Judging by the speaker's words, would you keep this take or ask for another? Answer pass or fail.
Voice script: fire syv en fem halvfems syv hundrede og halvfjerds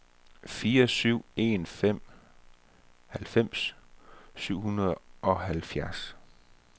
pass